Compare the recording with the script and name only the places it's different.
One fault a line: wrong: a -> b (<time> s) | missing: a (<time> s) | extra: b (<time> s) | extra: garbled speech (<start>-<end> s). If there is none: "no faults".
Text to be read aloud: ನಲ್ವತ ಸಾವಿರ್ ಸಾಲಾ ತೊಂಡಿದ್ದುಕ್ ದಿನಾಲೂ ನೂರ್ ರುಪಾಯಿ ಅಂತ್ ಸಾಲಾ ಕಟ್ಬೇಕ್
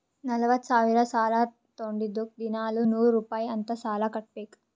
no faults